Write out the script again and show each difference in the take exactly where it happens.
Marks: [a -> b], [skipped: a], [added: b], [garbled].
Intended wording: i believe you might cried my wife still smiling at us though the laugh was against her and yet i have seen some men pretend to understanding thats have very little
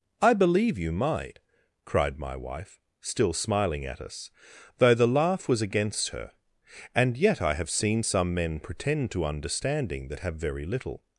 i believe you might cried my wife still smiling at us though the laugh was against her and yet i have seen some men pretend to understanding [thats -> that] have very little